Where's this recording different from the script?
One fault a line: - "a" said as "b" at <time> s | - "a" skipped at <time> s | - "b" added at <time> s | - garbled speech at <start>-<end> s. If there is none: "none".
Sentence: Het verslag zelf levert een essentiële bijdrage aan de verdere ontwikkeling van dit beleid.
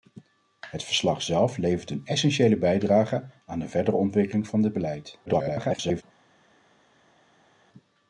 - garbled speech at 5.3-6.0 s